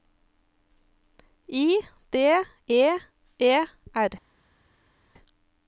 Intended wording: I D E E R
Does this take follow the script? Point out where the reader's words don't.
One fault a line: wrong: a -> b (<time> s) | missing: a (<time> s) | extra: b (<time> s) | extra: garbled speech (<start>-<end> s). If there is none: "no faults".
no faults